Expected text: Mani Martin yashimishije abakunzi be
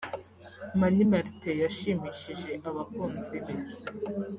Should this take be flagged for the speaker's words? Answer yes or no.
no